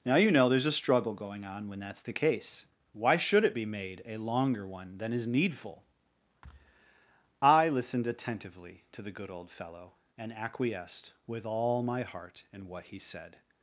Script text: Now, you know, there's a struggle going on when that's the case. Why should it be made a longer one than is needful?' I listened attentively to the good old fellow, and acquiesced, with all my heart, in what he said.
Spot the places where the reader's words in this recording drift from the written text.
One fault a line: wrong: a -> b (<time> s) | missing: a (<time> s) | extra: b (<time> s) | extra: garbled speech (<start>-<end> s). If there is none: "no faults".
no faults